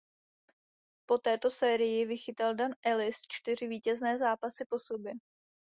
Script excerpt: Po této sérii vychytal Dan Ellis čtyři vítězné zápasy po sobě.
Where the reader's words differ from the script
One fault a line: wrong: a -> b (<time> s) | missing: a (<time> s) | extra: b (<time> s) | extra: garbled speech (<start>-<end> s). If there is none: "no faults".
no faults